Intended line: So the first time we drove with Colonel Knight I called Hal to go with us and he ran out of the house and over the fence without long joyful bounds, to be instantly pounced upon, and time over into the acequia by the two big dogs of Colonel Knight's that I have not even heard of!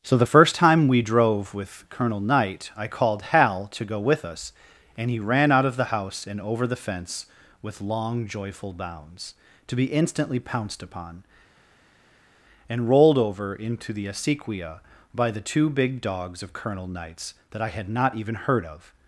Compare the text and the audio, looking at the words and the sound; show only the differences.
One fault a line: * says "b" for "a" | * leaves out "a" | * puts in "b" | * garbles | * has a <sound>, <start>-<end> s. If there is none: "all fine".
* says "with" for "without"
* says "rolled" for "time"
* says "had" for "have"